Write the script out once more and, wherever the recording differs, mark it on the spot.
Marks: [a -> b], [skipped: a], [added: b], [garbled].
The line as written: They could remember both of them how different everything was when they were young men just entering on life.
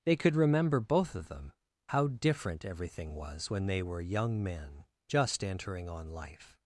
They could remember both of them how different everything was when they were young men just entering on life.